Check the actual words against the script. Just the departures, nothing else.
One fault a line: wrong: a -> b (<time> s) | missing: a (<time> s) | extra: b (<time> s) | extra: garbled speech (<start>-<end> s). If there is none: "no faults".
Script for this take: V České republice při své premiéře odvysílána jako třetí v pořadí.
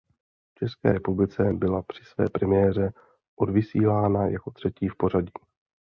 extra: byla (1.5 s)